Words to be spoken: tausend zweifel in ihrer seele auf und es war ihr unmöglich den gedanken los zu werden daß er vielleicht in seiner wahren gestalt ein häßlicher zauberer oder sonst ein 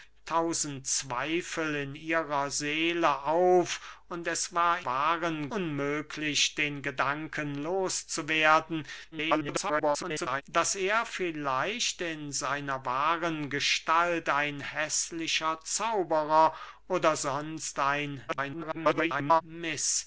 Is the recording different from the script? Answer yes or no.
yes